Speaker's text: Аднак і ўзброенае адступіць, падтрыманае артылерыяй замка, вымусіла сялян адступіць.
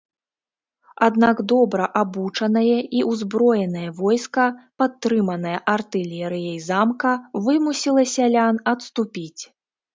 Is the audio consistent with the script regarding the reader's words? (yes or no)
no